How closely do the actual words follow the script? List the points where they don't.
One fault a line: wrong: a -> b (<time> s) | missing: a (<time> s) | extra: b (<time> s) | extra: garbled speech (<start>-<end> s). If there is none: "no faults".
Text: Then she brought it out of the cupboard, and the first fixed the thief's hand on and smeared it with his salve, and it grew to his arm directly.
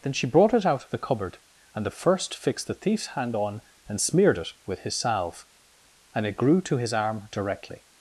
no faults